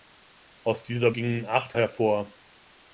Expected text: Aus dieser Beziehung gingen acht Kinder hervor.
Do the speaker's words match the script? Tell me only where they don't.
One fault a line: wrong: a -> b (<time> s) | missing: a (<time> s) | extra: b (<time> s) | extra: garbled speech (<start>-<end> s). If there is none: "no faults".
missing: Beziehung (1.1 s)
missing: Kinder (1.8 s)